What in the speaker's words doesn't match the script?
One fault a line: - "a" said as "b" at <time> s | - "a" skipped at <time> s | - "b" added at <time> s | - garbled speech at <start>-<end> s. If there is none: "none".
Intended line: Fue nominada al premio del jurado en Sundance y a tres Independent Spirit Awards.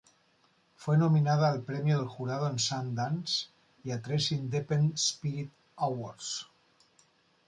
none